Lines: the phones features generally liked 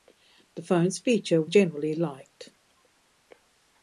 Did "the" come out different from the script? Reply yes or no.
no